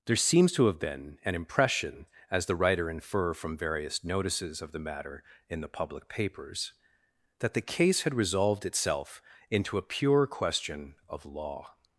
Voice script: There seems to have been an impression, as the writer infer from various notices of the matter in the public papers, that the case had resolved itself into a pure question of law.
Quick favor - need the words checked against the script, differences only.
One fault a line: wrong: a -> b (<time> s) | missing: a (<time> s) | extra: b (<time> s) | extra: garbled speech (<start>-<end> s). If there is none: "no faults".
no faults